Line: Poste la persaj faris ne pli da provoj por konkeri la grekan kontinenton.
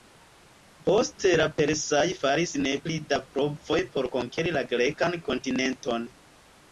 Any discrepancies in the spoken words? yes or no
no